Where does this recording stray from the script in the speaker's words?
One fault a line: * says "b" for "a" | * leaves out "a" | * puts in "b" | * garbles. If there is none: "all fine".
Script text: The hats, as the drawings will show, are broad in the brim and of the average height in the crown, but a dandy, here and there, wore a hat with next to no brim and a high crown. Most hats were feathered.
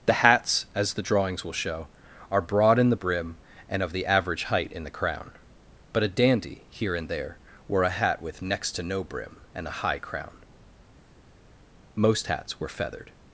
all fine